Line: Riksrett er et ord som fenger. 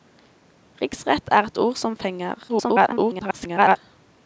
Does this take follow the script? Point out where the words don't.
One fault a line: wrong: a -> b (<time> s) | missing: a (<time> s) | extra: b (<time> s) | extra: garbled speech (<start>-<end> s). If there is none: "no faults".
extra: garbled speech (2.5-3.8 s)